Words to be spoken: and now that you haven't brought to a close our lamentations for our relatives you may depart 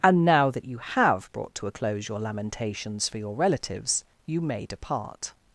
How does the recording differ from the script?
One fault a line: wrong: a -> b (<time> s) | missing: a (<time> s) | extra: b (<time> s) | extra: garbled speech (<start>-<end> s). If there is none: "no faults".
wrong: haven't -> have (0.8 s)
wrong: our -> your (2.1 s)
wrong: our -> your (3.2 s)